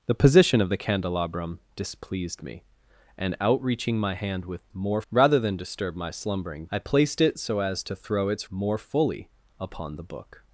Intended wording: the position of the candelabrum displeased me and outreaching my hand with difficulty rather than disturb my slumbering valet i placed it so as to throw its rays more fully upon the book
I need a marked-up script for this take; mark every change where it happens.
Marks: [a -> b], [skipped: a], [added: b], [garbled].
the position of the candelabrum displeased me and outreaching my hand with [difficulty -> more] rather than disturb my slumbering [skipped: valet] i placed it so as to throw its [skipped: rays] more fully upon the book